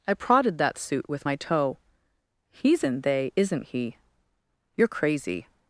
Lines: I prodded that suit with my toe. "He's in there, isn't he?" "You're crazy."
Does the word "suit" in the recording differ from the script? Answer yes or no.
no